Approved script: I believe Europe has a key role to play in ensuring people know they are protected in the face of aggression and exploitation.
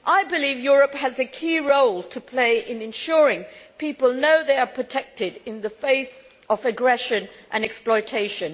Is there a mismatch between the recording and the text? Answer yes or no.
no